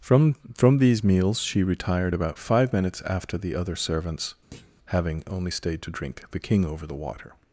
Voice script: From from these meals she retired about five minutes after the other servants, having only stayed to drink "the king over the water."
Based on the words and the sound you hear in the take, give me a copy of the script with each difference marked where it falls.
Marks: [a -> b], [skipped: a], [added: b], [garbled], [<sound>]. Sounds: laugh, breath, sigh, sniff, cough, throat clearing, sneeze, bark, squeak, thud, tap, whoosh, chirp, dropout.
From from these meals she retired about five minutes after the other servants, [thud] having only stayed to drink "the king over the water."